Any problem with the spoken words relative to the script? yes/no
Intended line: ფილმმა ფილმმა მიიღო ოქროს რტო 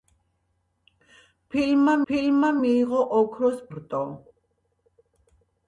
no